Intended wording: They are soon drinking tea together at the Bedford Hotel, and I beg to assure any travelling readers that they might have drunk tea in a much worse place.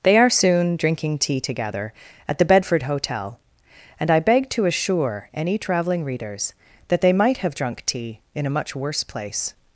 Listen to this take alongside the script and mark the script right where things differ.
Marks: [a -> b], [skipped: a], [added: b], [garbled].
They are soon drinking tea together at the Bedford Hotel, and I beg to assure any travelling readers that they might have drunk tea in a much worse place.